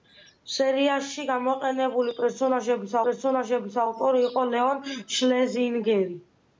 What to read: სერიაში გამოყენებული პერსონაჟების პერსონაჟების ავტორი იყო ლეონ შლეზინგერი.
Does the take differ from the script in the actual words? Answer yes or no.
no